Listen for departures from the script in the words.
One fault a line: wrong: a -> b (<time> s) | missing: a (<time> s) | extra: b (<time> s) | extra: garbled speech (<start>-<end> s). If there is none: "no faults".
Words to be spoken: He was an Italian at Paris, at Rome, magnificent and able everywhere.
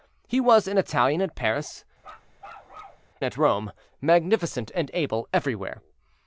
no faults